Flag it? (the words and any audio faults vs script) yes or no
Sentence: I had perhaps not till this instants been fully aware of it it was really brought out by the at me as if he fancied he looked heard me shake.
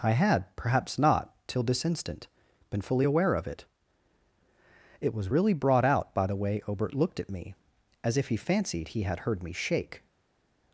yes